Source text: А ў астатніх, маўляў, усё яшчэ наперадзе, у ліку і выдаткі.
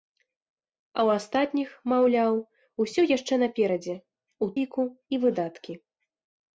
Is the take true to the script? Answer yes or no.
yes